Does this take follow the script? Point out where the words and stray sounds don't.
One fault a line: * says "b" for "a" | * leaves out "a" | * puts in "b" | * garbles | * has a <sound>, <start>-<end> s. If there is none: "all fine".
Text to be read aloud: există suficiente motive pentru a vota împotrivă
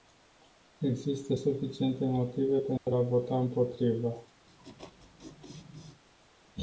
* has a dropout, 2.8-2.9 s
* has a laugh, 4.5-6.0 s